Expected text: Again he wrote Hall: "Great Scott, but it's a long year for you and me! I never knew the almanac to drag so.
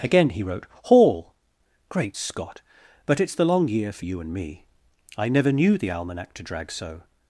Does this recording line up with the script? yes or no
no